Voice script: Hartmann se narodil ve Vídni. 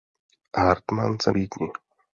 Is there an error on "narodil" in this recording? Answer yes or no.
yes